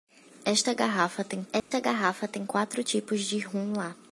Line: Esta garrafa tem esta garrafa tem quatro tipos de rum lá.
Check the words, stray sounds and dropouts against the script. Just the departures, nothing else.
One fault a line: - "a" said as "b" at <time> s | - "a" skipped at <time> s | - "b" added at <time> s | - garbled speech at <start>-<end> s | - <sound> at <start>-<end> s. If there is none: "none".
- dropout at 1.6-1.7 s